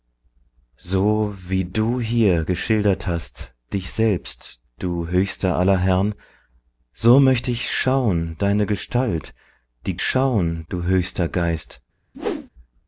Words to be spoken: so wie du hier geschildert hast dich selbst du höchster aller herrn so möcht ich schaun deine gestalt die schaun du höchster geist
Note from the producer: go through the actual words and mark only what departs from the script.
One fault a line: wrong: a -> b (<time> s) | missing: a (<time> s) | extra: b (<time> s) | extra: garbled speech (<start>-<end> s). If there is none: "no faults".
no faults